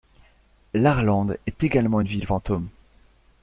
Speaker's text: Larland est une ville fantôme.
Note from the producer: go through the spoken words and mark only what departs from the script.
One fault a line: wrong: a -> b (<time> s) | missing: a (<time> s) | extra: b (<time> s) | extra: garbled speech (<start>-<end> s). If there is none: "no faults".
extra: également (1.6 s)